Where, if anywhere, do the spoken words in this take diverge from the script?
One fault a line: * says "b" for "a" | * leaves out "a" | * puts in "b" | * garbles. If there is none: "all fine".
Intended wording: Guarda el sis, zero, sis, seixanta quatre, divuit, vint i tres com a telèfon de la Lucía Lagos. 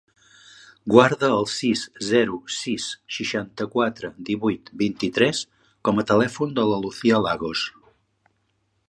all fine